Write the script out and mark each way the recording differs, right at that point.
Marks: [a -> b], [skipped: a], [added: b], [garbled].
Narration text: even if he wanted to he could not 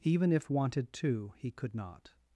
even if [skipped: he] wanted to he could not